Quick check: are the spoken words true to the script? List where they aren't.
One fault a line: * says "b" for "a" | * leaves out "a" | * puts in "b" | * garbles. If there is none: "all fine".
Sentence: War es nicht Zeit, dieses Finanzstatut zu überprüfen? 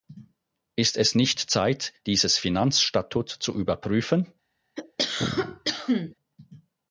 * says "Ist" for "War"